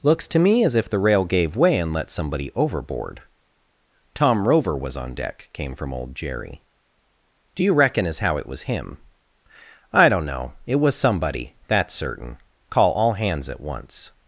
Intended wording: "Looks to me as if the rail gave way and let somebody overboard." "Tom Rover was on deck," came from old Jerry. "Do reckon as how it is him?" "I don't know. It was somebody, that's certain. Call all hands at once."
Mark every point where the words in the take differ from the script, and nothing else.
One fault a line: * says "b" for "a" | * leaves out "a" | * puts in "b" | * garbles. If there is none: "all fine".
* puts in "you"
* says "was" for "is"